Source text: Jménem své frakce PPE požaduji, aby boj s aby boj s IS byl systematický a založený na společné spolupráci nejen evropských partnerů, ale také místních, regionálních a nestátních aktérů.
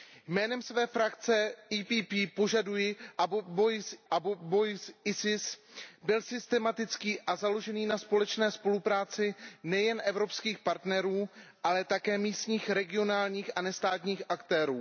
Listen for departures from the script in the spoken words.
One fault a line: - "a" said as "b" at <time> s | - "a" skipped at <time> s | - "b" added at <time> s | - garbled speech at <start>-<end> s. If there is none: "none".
none